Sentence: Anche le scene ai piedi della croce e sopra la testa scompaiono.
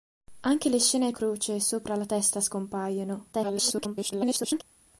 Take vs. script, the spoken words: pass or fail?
fail